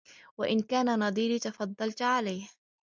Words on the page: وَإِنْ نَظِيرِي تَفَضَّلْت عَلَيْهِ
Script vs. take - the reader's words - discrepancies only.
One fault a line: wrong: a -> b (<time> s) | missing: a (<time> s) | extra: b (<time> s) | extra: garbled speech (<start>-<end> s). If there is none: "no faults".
extra: كَانَ (0.6 s)